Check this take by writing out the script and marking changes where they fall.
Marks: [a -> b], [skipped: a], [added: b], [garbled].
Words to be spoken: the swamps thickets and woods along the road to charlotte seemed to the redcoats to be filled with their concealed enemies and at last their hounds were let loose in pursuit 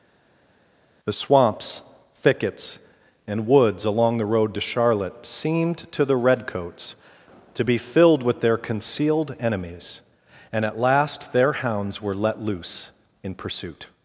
the swamps thickets and woods along the road to charlotte seemed to the redcoats to be filled with their concealed enemies and at last their hounds were let loose in pursuit